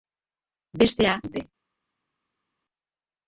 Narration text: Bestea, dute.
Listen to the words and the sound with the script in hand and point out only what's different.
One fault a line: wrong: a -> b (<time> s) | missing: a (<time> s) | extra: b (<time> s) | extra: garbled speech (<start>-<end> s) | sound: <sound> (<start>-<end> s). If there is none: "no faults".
no faults